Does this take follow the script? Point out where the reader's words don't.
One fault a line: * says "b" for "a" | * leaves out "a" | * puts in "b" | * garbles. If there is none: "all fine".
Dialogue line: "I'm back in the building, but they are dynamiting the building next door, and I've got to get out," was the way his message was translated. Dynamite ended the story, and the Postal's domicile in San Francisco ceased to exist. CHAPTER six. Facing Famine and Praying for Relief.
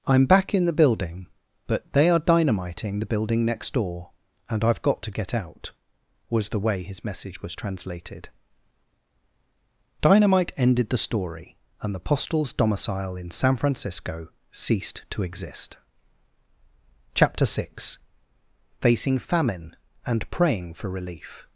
all fine